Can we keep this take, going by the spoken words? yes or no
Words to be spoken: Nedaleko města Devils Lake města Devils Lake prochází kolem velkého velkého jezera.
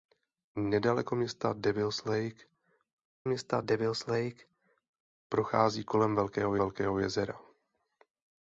yes